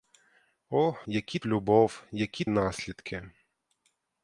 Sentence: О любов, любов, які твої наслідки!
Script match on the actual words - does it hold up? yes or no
no